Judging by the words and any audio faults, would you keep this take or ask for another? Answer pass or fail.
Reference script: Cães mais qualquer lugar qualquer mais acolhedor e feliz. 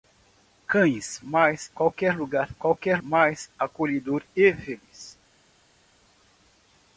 pass